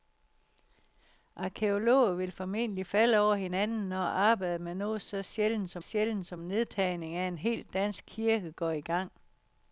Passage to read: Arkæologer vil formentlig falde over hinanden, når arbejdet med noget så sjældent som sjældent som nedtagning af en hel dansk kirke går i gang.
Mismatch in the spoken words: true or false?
false